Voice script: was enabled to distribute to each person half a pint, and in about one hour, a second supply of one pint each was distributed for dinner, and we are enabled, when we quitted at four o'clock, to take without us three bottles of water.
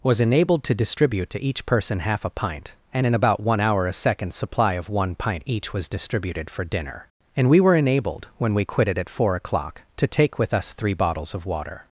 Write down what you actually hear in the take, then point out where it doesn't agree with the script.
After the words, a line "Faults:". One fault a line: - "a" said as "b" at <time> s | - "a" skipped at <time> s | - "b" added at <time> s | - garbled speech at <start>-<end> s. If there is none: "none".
was enabled to distribute to each person half a pint, and in about one hour, a second supply of one pint each was distributed for dinner, and we were enabled, when we quitted at four o'clock, to take with us three bottles of water.
Faults:
- "are" said as "were" at 7.6 s
- "without" said as "with" at 10.4 s